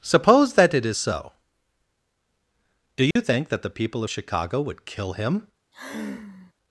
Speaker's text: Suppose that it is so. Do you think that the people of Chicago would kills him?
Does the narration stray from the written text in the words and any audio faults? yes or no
yes